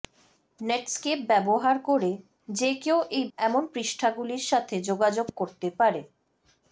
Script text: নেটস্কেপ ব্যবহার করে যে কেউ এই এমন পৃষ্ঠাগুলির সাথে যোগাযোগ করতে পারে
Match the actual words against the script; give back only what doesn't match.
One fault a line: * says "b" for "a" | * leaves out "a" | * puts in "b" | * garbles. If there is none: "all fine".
all fine